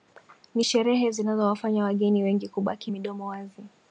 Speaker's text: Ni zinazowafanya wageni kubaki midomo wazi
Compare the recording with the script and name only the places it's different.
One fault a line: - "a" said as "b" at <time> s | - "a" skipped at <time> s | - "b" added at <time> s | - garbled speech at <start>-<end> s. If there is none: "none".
- "sherehe" added at 0.6 s
- "wengi" added at 2.2 s